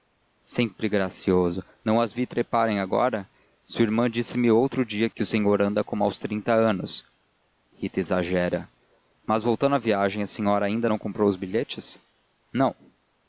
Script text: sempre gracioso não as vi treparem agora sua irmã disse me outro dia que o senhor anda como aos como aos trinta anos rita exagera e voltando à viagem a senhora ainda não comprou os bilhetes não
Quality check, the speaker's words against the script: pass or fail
fail